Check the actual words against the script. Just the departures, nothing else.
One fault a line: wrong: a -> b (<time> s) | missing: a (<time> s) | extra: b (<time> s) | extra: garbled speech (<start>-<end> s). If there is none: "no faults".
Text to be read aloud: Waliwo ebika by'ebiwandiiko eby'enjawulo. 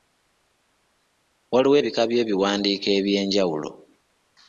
no faults